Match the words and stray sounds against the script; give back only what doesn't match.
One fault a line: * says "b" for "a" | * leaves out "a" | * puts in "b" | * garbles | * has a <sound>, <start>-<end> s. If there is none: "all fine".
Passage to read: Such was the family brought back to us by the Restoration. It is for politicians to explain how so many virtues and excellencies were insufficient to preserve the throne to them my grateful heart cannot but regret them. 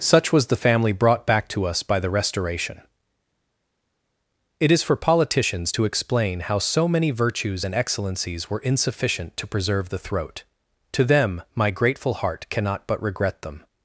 * says "throat" for "throne"